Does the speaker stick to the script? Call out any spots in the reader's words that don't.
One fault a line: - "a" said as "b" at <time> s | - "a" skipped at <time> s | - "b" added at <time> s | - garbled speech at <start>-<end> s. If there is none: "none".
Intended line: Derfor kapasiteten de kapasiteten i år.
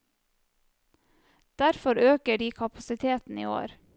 - "kapasiteten" said as "øker" at 2.1 s